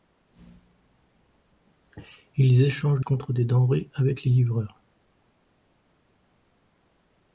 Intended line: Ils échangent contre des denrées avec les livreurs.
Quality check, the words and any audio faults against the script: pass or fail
pass